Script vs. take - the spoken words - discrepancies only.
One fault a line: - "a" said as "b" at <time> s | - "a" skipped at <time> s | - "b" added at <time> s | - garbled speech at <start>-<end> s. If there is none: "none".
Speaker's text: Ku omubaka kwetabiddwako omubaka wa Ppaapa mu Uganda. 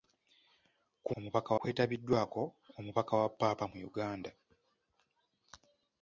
none